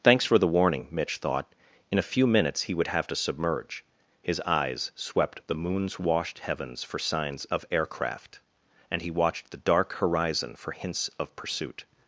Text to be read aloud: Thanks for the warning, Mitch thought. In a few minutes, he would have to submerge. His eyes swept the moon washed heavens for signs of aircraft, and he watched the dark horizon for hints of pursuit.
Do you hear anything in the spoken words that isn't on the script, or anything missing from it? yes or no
yes